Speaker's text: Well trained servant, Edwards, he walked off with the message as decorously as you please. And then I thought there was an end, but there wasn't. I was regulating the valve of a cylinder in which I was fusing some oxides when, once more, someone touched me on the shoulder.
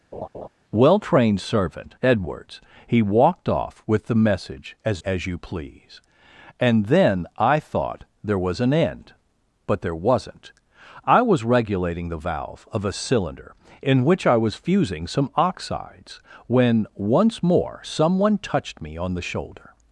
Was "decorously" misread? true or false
true